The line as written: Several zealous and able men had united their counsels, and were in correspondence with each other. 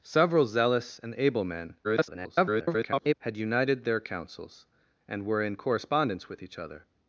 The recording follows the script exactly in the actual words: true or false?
false